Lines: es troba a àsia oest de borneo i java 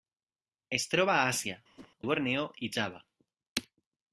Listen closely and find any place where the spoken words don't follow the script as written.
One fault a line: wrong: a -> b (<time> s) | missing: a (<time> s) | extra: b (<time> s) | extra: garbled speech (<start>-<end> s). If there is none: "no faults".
missing: oest (1.6 s)